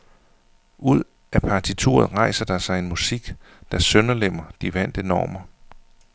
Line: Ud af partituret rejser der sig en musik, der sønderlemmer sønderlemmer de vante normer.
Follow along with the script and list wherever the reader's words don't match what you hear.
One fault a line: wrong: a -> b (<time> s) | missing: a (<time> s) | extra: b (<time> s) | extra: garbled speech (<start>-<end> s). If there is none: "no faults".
missing: sønderlemmer (4.4 s)